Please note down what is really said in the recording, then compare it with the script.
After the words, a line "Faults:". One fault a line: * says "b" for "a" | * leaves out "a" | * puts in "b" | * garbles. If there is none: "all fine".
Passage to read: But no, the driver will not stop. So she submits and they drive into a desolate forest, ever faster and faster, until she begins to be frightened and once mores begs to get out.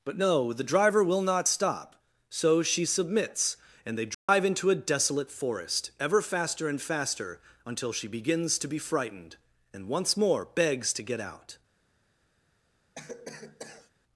But no, the driver will not stop. So she submits and they drive into a desolate forest, ever faster and faster, until she begins to be frightened and once more begs to get out.
Faults:
* says "more" for "mores"